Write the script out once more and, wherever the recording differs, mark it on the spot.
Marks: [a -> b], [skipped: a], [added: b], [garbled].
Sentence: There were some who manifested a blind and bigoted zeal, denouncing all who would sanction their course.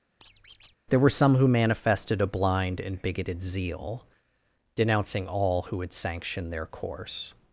There were some who manifested a blind and bigoted zeal, denouncing all who would sanction their course.